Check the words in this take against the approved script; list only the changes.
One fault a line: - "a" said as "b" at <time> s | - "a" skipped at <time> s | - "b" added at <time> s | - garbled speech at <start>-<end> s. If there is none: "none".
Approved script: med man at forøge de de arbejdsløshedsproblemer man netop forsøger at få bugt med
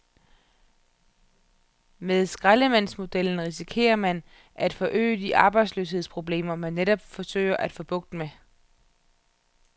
- "skraldemandsmodellen risikerer" added at 2.2 s
- "de" skipped at 5.4 s